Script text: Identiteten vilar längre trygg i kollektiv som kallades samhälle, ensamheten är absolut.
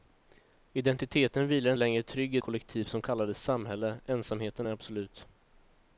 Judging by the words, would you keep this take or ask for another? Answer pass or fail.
pass